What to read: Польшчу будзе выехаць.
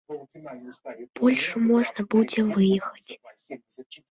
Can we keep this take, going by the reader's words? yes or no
no